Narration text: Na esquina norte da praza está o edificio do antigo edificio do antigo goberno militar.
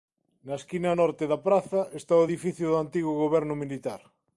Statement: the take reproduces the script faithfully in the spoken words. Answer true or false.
false